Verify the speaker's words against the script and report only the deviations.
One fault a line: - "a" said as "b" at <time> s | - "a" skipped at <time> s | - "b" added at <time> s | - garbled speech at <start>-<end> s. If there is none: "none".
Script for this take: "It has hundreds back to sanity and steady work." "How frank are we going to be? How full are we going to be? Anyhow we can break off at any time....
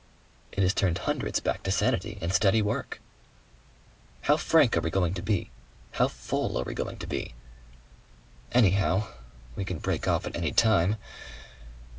- "turned" added at 0.7 s